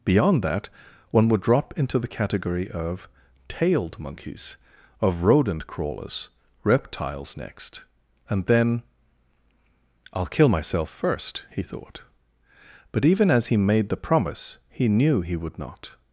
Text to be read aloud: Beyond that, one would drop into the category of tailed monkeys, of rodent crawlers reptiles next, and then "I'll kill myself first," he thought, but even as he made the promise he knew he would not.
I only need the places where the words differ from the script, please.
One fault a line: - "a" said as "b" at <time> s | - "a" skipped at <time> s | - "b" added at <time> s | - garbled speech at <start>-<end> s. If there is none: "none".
none